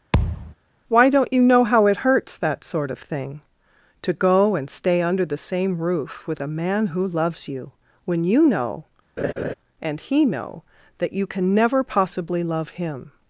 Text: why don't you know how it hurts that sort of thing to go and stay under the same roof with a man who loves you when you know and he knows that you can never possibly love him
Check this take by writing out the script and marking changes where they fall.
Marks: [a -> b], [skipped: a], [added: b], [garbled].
why don't you know how it hurts that sort of thing to go and stay under the same roof with a man who loves you when you know and he [knows -> know] that you can never possibly love him